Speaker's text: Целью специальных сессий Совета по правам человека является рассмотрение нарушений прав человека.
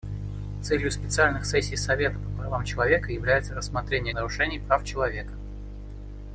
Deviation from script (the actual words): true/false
false